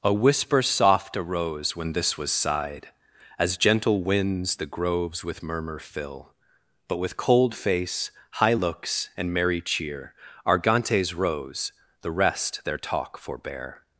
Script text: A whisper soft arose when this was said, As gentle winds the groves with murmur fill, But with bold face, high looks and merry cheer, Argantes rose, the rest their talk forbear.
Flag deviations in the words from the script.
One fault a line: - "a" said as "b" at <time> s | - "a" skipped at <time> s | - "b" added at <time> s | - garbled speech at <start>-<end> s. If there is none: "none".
- "said" said as "sighed" at 2.3 s
- "bold" said as "cold" at 7.2 s